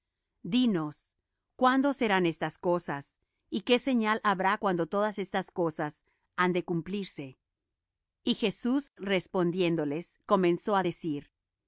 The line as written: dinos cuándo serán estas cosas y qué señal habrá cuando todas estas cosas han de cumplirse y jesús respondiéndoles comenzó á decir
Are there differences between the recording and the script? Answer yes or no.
no